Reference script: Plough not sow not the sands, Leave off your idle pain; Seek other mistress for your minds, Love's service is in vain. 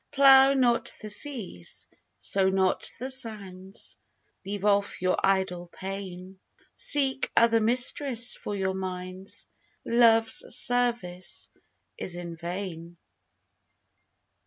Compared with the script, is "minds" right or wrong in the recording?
right